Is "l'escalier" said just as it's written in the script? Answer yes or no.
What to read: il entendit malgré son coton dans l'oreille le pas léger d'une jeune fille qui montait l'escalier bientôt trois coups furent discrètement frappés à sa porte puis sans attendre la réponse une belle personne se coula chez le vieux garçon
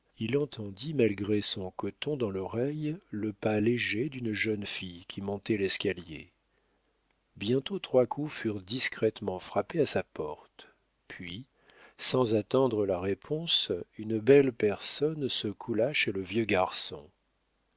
yes